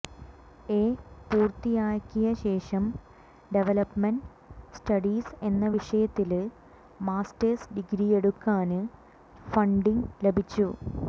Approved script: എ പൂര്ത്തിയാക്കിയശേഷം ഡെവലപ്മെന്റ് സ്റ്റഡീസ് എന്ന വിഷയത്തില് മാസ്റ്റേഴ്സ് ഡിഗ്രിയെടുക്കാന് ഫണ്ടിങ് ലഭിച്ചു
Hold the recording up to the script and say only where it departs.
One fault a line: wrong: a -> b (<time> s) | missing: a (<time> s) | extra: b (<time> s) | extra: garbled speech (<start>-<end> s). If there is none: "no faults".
no faults